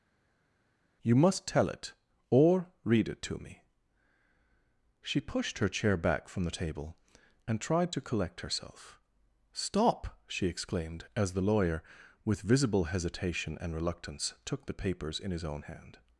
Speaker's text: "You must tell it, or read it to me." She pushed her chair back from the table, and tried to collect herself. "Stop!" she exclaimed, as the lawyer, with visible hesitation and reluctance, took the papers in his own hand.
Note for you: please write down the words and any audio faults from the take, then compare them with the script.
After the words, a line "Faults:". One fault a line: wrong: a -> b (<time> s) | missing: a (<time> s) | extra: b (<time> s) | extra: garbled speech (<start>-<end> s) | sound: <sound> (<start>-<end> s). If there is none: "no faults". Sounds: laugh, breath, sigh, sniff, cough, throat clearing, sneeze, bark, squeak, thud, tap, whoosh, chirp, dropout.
"You must tell it, or read it to me." She pushed her chair back from the table, and tried to collect herself. "Stop!" she exclaimed, as the lawyer, with visible hesitation and reluctance, took the papers in his own hand.
Faults:
no faults